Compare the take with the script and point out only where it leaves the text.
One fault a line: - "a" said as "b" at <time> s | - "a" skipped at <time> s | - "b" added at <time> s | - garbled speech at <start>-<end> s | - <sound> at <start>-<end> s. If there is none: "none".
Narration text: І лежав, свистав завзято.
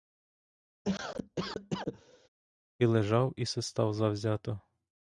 - cough at 0.8-2.3 s
- "і" added at 3.4 s